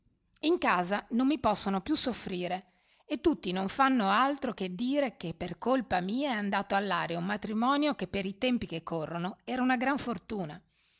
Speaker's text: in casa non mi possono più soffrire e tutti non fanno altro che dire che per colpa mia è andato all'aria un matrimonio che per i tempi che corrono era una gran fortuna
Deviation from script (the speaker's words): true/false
false